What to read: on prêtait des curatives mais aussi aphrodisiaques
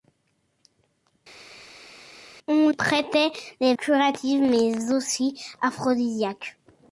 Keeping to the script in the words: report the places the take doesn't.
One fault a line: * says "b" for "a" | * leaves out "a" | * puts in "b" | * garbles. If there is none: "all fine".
all fine